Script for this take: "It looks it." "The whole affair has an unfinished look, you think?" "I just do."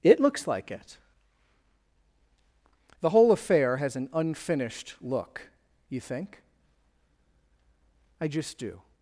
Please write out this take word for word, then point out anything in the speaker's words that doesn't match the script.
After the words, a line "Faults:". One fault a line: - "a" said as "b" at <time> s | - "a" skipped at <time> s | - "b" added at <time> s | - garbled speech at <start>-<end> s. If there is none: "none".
"It looks like it." "The whole affair has an unfinished look, you think?" "I just do."
Faults:
- "like" added at 0.5 s